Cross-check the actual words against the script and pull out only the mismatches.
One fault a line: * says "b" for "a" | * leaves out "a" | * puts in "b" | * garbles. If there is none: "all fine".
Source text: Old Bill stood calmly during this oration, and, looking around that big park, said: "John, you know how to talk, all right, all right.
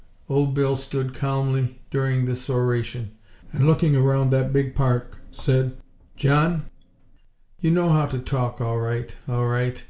all fine